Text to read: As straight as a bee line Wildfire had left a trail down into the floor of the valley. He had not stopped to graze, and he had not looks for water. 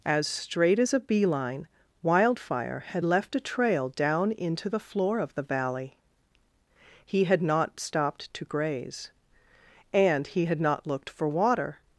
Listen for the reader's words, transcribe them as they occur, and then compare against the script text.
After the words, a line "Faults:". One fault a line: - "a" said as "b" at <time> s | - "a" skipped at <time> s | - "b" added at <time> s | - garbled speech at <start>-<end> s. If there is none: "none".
As straight as a bee line Wildfire had left a trail down into the floor of the valley. He had not stopped to graze, and he had not looked for water.
Faults:
- "looks" said as "looked" at 10.9 s